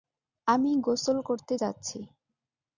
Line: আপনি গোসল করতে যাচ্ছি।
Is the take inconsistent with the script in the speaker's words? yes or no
yes